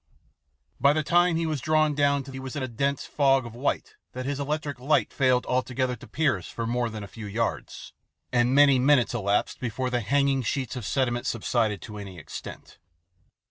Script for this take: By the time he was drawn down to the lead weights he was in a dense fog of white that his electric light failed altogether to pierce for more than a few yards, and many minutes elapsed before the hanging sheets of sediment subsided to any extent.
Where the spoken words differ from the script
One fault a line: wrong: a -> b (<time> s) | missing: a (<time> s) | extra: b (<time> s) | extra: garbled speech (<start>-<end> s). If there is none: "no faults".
missing: the lead weights (2.3 s)